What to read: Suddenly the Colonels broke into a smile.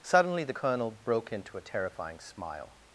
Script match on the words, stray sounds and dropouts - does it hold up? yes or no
no